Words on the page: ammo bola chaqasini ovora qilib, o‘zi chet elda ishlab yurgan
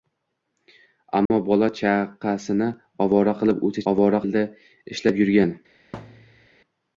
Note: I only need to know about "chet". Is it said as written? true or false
false